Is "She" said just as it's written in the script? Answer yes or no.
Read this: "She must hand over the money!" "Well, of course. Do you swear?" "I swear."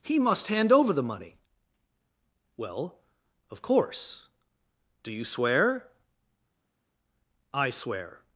no